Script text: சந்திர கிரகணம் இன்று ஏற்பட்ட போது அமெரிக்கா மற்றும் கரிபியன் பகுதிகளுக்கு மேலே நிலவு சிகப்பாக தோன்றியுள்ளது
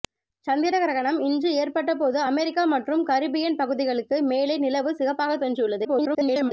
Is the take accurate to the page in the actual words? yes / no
no